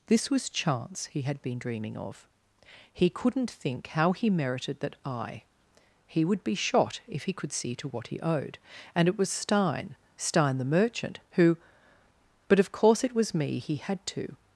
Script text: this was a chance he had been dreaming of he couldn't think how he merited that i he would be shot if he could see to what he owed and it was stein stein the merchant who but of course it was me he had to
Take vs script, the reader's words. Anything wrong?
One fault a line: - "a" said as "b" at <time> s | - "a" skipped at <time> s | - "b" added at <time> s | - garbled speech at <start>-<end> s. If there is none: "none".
- "a" skipped at 0.5 s